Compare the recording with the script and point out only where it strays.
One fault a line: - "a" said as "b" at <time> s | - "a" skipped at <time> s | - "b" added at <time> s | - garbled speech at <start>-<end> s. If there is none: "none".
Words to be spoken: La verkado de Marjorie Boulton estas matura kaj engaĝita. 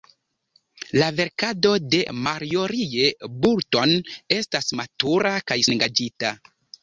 none